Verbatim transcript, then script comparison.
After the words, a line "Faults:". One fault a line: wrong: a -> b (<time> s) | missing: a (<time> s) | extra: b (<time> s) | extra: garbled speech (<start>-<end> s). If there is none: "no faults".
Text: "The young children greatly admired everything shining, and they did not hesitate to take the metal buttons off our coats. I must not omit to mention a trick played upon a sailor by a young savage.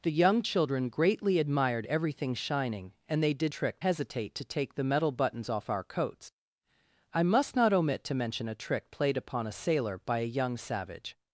"The young children greatly admired everything shining, and they did trick hesitate to take the metal buttons off our coats. I must not omit to mention a trick played upon a sailor by a young savage.
Faults:
wrong: not -> trick (3.5 s)